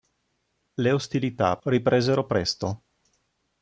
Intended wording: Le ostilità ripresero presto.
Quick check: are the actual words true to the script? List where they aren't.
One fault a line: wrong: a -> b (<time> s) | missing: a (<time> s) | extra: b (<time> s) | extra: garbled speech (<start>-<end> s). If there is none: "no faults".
no faults